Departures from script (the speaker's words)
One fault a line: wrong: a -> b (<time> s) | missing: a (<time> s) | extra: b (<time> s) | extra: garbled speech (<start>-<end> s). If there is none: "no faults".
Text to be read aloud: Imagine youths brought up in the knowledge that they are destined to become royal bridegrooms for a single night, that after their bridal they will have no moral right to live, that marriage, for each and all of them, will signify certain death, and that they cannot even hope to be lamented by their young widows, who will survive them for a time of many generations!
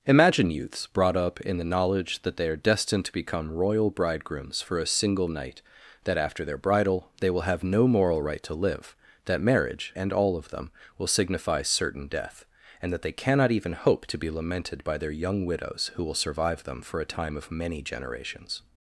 missing: for each (9.9 s)